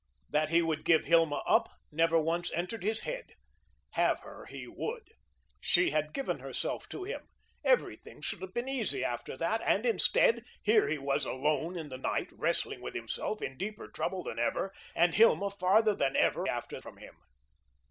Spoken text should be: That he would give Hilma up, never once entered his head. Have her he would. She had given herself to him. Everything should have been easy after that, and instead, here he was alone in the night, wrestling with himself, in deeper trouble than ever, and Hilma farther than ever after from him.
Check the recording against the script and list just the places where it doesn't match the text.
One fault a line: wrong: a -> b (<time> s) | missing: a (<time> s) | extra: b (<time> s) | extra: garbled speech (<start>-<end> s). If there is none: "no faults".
no faults